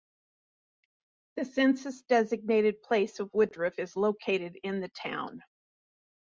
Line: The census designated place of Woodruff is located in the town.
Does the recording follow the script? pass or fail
pass